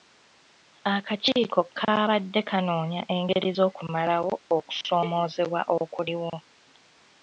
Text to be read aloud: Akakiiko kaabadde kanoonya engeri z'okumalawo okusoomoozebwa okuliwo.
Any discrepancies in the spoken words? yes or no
no